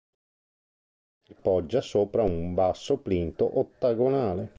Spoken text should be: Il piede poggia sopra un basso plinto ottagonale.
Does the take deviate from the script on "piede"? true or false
true